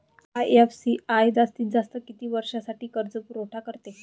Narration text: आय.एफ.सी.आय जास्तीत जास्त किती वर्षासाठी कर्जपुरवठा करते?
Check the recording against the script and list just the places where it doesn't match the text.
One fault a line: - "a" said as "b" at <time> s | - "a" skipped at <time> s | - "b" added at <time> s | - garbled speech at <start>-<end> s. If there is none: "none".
none